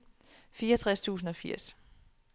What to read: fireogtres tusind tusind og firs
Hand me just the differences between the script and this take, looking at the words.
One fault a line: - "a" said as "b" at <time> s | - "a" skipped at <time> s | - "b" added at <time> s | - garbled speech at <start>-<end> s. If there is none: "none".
- "tusind" skipped at 1.3 s